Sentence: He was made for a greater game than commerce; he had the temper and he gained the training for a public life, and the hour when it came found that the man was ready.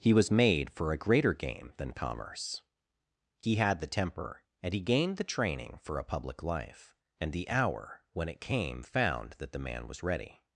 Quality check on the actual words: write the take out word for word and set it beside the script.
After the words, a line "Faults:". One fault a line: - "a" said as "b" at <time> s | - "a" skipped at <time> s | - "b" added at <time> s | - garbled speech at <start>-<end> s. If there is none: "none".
He was made for a greater game than commerce; he had the temper and he gained the training for a public life, and the hour when it came found that the man was ready.
Faults:
none